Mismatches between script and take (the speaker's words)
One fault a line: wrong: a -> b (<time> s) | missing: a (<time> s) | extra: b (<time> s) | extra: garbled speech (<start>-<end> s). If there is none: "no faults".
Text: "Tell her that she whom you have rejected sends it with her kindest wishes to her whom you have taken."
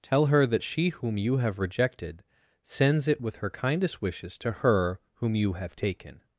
no faults